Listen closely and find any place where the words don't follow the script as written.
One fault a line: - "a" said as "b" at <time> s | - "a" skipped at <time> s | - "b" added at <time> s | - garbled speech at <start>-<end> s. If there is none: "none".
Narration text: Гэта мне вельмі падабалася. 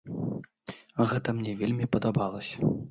none